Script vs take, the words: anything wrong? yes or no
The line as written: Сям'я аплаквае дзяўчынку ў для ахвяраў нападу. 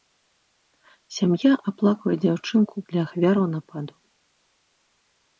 no